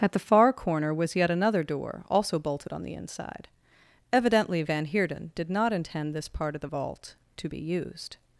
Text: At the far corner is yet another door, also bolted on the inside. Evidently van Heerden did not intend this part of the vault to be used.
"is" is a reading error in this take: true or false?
true